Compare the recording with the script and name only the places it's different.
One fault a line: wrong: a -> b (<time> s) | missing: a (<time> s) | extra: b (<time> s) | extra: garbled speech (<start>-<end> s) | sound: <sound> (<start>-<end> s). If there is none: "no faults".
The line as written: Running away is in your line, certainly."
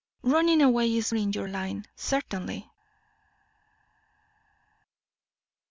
no faults